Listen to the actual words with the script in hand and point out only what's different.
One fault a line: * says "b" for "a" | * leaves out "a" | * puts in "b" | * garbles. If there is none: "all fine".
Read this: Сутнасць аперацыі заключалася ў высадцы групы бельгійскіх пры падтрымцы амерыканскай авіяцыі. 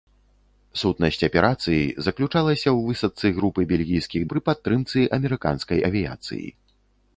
all fine